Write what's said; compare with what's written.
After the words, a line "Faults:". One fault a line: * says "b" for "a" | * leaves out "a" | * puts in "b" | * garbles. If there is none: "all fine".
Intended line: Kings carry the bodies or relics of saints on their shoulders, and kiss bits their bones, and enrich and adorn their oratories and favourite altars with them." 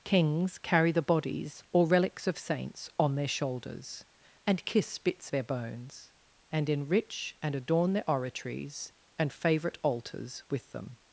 Kings carry the bodies or relics of saints on their shoulders, and kiss bits their bones, and enrich and adorn their oratories and favourite altars with them."
Faults:
all fine